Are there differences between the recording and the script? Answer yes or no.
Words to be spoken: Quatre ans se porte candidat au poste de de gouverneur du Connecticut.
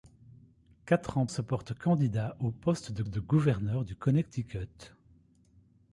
no